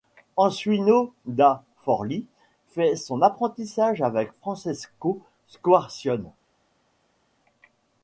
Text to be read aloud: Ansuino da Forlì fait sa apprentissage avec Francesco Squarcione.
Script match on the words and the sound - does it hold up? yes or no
no